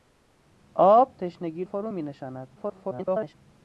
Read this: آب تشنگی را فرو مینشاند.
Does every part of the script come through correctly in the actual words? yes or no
no